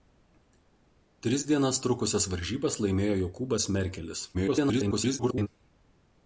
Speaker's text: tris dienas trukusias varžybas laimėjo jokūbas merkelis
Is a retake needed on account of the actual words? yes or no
yes